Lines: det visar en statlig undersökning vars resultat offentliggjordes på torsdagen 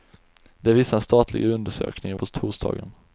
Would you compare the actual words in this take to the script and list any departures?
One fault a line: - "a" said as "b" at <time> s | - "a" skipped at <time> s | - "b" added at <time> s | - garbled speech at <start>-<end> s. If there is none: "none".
- "vars resultat offentliggjordes" skipped at 2.2 s